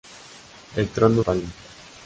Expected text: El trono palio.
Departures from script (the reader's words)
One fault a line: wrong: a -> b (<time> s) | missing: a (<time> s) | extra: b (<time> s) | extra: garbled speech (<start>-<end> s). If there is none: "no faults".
no faults